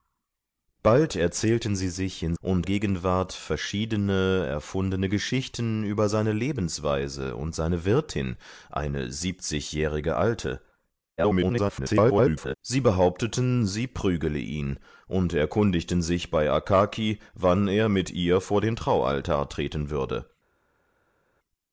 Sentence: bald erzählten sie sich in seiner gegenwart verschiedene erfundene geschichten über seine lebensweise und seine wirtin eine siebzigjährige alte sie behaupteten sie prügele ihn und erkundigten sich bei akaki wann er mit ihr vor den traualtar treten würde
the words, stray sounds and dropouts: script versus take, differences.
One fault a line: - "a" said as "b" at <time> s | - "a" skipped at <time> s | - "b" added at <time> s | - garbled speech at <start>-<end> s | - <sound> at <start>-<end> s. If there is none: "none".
- "seiner" said as "und" at 2.4 s
- garbled speech at 11.2-12.6 s